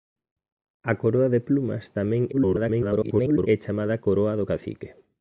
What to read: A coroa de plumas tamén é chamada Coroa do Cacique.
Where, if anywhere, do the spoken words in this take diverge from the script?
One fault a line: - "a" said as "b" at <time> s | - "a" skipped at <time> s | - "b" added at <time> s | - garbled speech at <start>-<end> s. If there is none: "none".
- garbled speech at 2.3-3.5 s